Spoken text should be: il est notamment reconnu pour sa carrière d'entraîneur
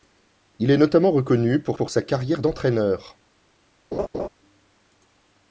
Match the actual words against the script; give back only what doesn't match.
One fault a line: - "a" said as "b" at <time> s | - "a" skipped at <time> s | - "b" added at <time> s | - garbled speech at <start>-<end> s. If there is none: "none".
- "pour" added at 1.7 s